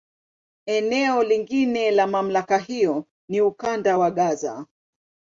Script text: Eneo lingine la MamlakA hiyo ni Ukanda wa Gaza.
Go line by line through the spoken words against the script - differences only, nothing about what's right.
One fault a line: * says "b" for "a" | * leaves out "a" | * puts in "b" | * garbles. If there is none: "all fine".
all fine